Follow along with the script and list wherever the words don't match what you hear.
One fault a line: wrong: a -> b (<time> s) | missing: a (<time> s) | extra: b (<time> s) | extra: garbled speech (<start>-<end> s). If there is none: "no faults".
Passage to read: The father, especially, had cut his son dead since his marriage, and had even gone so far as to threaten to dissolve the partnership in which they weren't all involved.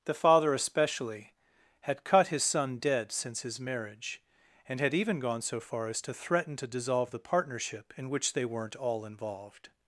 no faults